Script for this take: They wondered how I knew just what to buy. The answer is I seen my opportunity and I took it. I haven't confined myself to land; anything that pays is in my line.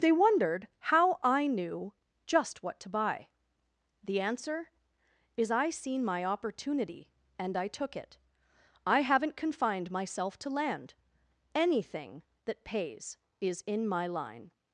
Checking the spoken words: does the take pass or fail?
pass